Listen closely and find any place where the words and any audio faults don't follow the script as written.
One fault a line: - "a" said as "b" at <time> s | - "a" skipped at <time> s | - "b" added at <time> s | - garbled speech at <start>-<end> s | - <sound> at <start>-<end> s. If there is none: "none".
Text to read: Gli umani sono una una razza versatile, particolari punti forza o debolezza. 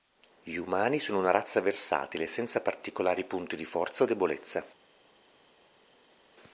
- "una" skipped at 1.3 s
- "senza" added at 2.2 s
- "di" added at 3.5 s